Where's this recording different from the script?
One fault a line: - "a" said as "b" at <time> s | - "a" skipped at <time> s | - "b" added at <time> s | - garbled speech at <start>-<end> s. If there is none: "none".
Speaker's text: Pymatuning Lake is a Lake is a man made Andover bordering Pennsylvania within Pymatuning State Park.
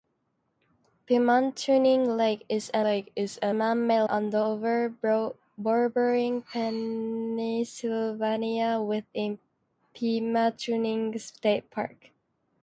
none